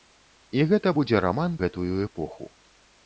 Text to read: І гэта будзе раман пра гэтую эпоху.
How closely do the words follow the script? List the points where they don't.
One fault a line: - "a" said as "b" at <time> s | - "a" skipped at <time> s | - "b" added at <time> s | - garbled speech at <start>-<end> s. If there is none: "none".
- "пра" skipped at 1.6 s